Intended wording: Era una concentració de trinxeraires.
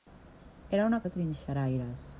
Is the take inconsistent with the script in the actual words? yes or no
yes